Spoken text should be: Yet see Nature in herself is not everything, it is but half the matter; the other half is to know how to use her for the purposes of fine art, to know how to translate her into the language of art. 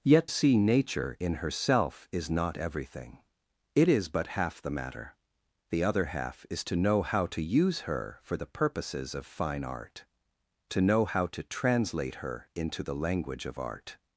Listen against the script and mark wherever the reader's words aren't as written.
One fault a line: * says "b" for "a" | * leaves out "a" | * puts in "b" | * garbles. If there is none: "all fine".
all fine